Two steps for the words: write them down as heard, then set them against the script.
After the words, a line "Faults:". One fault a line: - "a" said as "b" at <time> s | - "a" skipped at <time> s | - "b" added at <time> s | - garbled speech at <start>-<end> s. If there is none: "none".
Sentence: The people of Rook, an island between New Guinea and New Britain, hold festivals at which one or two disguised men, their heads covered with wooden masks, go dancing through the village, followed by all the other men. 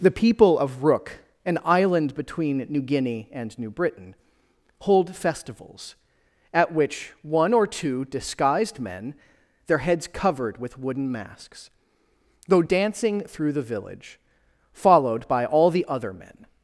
The people of Rook, an island between New Guinea and New Britain, hold festivals at which one or two disguised men, their heads covered with wooden masks, go dancing through the village, followed by all the other men.
Faults:
none